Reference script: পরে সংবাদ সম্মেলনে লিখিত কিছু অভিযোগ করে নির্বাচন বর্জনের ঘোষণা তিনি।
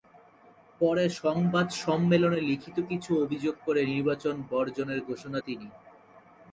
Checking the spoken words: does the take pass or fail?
pass